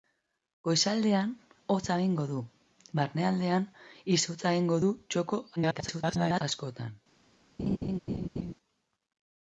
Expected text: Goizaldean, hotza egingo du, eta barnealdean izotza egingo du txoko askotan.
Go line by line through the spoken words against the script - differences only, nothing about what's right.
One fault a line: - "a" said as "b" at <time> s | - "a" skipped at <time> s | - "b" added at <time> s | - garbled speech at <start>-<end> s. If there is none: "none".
- "eta" skipped at 2.4 s
- garbled speech at 5.6-6.4 s